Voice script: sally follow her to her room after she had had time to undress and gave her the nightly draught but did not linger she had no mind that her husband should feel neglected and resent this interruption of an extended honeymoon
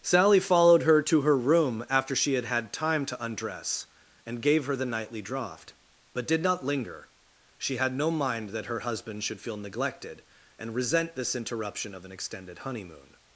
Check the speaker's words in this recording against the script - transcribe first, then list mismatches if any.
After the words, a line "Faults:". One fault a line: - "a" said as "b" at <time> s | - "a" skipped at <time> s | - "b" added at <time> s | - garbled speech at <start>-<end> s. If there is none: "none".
sally followed her to her room after she had had time to undress and gave her the nightly draught but did not linger she had no mind that her husband should feel neglected and resent this interruption of an extended honeymoon
Faults:
- "follow" said as "followed" at 0.4 s